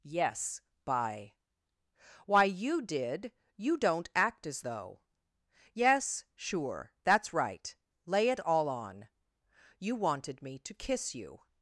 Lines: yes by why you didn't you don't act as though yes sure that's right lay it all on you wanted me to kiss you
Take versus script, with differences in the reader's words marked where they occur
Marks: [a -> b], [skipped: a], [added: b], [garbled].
yes by why you [didn't -> did] you don't act as though yes sure that's right lay it all on you wanted me to kiss you